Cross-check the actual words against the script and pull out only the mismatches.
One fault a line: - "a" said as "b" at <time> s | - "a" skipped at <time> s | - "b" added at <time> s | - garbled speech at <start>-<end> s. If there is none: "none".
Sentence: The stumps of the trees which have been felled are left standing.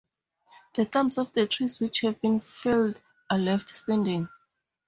none